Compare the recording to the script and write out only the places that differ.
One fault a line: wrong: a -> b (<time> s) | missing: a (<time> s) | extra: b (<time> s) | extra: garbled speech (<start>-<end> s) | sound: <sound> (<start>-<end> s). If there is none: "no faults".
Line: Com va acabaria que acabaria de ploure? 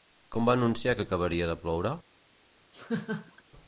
wrong: acabaria -> anunciar (0.6 s)
sound: laugh (2.7-3.4 s)